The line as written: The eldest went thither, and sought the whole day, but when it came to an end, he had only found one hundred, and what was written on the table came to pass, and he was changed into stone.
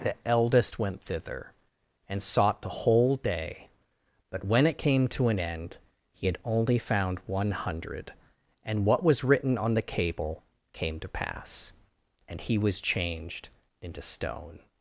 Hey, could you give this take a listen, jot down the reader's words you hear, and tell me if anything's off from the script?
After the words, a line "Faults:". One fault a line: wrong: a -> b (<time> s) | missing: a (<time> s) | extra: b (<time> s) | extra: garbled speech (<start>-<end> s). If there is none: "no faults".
The eldest went thither, and sought the whole day, but when it came to an end, he had only found one hundred, and what was written on the cable came to pass, and he was changed into stone.
Faults:
wrong: table -> cable (9.8 s)